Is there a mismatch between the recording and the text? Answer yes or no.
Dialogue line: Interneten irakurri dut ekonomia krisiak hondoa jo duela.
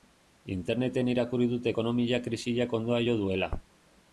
no